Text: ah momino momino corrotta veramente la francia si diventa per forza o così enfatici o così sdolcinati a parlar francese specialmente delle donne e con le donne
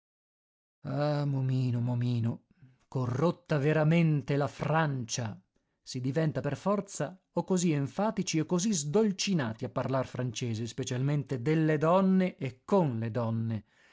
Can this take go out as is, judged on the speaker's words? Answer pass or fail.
pass